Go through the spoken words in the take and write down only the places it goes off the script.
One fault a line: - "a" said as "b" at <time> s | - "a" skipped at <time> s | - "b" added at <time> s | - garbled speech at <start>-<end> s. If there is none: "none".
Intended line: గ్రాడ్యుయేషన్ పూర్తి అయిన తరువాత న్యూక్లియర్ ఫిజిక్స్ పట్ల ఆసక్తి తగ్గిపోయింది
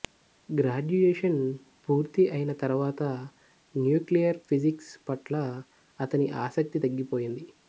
- "అతని" added at 6.0 s